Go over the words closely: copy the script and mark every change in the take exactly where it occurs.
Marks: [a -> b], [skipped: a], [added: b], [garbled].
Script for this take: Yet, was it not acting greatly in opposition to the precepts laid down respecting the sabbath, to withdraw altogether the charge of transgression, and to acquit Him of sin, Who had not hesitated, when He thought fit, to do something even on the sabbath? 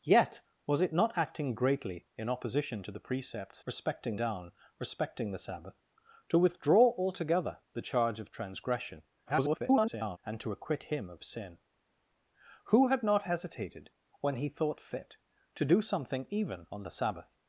Yet, was it not acting greatly in opposition to the precepts [laid -> respecting] down respecting the sabbath, to withdraw altogether the charge of transgression, [garbled] and to acquit Him of sin, Who had not hesitated, when He thought fit, to do something even on the sabbath?